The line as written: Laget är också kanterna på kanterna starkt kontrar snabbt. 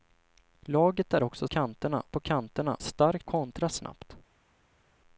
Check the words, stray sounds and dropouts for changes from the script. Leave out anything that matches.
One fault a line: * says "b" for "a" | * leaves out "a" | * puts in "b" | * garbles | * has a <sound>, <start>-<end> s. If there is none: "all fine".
all fine